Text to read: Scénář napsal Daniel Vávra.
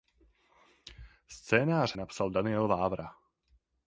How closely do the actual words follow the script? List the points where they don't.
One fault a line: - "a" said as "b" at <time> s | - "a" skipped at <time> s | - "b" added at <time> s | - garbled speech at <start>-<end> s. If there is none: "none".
none